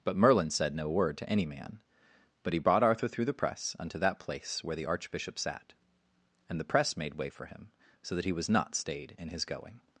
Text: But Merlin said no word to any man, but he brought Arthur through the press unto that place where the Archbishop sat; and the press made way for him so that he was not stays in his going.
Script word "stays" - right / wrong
wrong